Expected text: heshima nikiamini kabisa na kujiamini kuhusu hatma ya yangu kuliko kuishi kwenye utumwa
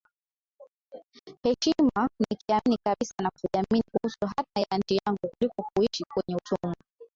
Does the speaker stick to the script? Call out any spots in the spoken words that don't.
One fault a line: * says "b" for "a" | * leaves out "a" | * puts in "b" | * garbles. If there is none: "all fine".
* puts in "nchi"